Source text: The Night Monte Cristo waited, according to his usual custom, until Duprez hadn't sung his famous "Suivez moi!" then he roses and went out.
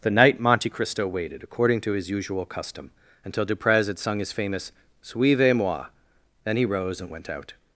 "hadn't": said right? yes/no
no